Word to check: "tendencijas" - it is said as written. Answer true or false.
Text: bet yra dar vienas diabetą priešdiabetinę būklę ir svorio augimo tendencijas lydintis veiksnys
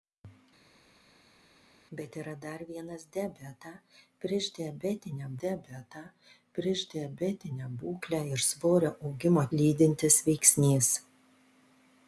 false